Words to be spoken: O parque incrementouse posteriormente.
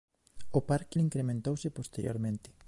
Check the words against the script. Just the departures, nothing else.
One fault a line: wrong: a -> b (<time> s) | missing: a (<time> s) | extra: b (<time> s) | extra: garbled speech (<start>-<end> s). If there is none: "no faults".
no faults